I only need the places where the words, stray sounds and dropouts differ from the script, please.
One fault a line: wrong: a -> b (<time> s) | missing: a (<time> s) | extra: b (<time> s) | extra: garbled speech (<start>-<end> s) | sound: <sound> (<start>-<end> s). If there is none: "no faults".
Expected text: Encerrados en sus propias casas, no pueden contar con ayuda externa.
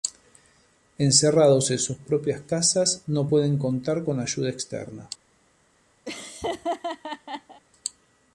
sound: laugh (6.1-7.6 s)